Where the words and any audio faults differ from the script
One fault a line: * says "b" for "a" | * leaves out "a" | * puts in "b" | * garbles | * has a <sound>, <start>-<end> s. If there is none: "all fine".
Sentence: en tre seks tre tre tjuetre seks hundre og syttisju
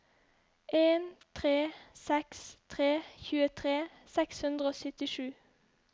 * leaves out "tre"